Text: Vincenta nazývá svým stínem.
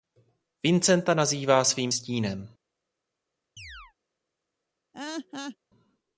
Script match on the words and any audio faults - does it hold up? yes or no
no